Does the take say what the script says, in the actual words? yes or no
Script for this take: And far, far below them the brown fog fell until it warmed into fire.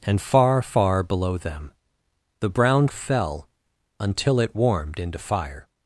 no